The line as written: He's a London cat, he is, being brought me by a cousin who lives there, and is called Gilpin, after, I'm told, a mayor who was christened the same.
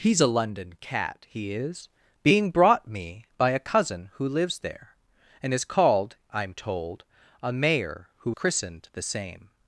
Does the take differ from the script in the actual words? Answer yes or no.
yes